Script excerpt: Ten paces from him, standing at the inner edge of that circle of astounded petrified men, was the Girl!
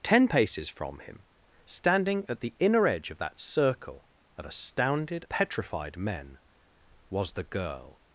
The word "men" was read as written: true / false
true